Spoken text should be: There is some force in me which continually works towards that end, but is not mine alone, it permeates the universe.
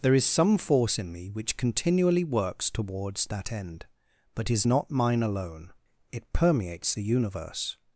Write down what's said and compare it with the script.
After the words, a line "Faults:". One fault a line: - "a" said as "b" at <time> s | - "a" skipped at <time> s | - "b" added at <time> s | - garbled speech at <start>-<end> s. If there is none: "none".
There is some force in me which continually works towards that end, but is not mine alone, it permeates the universe.
Faults:
none